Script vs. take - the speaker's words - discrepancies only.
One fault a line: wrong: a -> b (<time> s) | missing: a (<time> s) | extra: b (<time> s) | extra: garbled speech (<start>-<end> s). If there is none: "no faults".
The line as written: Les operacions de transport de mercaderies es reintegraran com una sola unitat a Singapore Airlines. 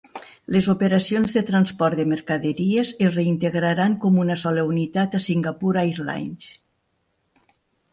no faults